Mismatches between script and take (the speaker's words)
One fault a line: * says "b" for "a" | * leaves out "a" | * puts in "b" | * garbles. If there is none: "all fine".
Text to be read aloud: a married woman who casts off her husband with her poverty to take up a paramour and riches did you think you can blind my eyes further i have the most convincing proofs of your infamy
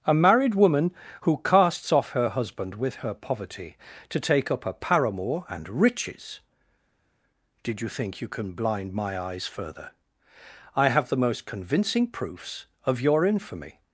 all fine